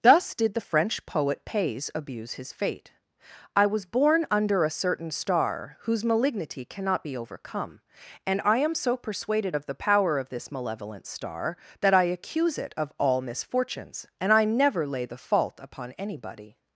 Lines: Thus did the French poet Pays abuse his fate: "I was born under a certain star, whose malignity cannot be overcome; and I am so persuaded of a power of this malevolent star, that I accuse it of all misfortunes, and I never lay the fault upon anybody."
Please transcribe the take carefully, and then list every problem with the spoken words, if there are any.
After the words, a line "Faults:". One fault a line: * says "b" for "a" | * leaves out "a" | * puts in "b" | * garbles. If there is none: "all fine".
Thus did the French poet Pays abuse his fate: "I was born under a certain star, whose malignity cannot be overcome; and I am so persuaded of the power of this malevolent star, that I accuse it of all misfortunes, and I never lay the fault upon anybody."
Faults:
* says "the" for "a"